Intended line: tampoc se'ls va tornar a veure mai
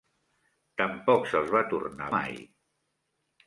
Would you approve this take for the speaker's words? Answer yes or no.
no